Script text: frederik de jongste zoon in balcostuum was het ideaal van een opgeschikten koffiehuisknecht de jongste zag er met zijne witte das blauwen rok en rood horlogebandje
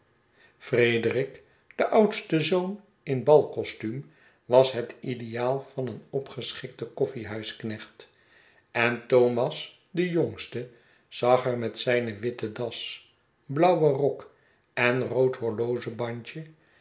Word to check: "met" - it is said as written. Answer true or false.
true